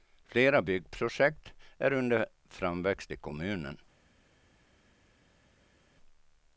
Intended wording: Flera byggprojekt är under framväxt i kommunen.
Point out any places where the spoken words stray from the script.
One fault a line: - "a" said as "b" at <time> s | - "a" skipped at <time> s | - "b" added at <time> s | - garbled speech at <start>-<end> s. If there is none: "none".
none